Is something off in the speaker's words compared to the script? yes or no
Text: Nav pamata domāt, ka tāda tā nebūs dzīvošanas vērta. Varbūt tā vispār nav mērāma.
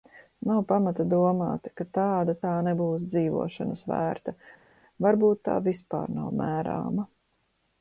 no